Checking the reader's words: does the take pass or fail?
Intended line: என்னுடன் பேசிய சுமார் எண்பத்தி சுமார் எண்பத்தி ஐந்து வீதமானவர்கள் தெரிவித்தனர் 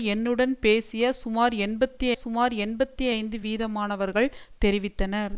pass